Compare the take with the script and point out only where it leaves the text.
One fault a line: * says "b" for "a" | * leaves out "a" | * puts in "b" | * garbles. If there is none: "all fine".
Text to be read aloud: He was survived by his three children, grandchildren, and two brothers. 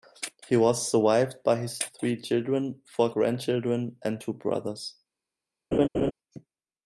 * puts in "four"